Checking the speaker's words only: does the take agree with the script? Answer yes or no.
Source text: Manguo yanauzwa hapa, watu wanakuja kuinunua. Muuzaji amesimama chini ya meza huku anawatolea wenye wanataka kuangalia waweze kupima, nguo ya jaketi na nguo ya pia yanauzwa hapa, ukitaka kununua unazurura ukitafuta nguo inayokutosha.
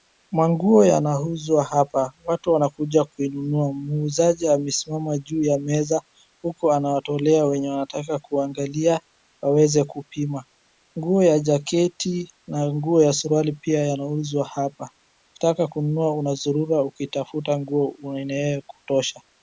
no